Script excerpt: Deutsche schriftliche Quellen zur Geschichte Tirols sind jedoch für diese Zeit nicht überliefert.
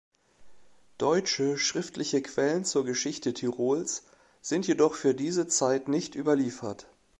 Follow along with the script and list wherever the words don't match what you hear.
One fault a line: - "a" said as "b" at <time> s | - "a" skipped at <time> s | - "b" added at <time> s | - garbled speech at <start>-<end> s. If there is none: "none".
none